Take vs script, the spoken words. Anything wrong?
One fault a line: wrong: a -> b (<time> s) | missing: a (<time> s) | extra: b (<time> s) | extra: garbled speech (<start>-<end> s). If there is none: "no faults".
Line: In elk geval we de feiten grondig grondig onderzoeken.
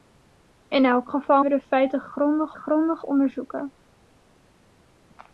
no faults